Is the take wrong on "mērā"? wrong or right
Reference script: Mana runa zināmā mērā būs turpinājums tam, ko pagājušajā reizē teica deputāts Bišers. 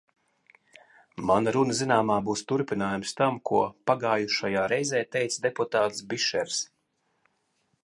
wrong